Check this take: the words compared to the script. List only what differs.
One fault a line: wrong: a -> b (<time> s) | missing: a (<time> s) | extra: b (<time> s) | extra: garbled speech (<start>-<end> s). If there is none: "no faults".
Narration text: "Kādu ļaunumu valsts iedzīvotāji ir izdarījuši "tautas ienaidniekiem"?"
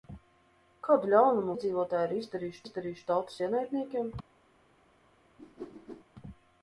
missing: valsts (1.6 s)
extra: izdarījuši (2.6 s)